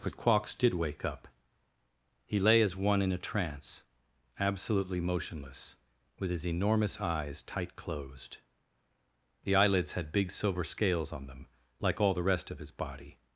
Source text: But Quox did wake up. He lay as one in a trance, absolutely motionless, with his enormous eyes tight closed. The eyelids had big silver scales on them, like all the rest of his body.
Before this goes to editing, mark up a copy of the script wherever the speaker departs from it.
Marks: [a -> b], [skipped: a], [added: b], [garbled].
But Quox did wake up. He lay as one in a trance, absolutely motionless, with his enormous eyes tight closed. The eyelids had big silver scales on them, like all the rest of his body.